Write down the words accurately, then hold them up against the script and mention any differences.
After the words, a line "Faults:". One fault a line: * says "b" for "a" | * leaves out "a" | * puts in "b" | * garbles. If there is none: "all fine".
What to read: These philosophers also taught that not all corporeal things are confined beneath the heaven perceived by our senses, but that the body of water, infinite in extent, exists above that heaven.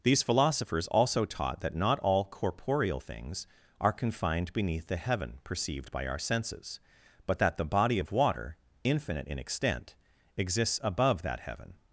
These philosophers also taught that not all corporeal things are confined beneath the heaven perceived by our senses, but that the body of water, infinite in extent, exists above that heaven.
Faults:
all fine